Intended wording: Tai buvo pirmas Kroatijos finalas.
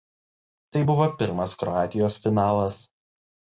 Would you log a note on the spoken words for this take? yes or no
no